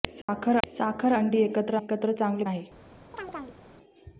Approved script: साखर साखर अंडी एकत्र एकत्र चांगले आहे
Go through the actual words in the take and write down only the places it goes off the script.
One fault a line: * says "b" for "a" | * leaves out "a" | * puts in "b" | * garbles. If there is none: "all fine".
all fine